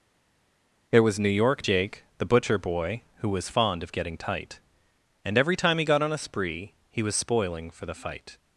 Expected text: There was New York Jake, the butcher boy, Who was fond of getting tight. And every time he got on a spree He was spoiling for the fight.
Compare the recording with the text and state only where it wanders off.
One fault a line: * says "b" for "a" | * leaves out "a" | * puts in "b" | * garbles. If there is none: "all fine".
all fine